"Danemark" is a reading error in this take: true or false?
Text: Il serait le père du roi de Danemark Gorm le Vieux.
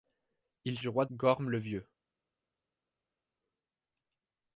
true